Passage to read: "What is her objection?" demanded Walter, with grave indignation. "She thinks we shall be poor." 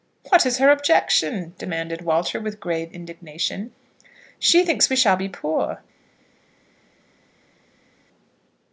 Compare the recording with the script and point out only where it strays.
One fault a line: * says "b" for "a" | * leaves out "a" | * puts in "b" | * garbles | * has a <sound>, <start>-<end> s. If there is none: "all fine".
all fine